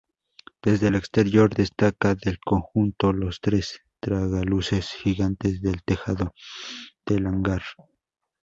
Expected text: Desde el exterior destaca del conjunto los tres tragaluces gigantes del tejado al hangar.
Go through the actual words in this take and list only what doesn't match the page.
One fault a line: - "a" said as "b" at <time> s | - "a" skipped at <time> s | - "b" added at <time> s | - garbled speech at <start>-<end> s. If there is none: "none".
- "al" said as "del" at 7.0 s